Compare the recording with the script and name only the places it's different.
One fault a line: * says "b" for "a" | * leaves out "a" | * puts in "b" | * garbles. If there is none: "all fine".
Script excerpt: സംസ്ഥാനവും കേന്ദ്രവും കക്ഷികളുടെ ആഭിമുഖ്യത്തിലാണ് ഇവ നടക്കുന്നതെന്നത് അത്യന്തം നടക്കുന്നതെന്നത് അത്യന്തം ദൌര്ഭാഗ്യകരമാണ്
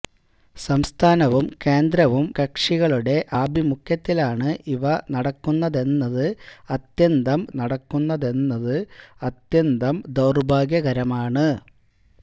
all fine